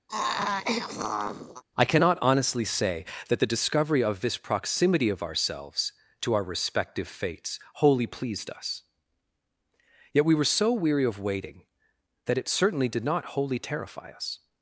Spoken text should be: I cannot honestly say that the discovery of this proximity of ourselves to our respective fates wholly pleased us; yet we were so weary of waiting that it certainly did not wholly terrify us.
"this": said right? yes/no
yes